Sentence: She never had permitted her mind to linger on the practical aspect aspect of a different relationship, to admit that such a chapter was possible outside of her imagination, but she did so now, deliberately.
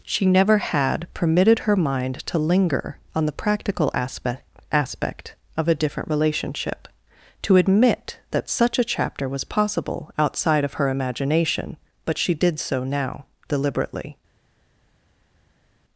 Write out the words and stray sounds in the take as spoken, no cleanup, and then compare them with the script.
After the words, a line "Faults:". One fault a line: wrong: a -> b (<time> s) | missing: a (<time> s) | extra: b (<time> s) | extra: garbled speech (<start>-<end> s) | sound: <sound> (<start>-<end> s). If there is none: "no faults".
She never had permitted her mind to linger on the practical aspect aspect of a different relationship, to admit that such a chapter was possible outside of her imagination, but she did so now, deliberately.
Faults:
no faults